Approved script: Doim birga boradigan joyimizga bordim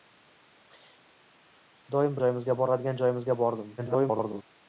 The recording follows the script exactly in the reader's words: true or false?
false